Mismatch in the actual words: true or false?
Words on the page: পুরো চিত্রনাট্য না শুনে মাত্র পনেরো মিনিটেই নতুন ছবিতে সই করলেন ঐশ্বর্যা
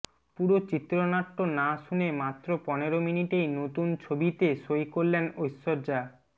false